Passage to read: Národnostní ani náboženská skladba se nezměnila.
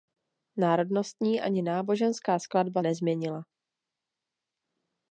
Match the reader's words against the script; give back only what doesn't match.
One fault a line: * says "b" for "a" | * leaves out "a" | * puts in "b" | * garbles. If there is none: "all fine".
* leaves out "se"